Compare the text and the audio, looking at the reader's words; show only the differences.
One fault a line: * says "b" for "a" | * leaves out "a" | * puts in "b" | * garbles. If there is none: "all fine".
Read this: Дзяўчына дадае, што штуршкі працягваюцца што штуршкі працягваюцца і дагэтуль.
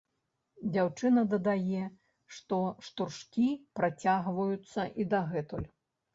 * leaves out "што штуршкі працягваюцца"